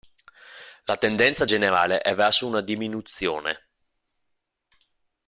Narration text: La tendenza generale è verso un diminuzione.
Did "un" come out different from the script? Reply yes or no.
yes